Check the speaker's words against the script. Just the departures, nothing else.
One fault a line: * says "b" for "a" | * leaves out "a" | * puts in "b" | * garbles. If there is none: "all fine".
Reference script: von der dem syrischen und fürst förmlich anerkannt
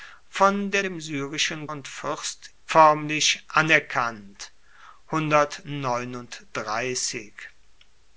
all fine